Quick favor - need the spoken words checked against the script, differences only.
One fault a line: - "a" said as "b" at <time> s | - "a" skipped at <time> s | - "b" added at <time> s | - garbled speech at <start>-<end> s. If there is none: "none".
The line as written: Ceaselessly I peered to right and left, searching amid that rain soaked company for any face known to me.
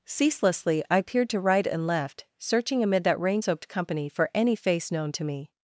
none